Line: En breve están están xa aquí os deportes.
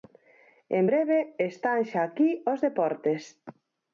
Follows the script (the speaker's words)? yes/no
no